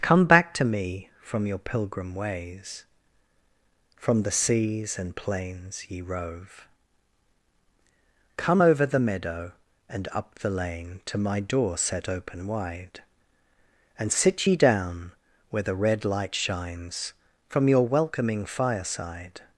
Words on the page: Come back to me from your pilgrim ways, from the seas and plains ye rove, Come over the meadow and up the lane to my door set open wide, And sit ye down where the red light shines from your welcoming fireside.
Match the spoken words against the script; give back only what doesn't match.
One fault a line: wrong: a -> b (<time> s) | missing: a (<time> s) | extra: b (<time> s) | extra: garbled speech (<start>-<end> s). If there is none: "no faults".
no faults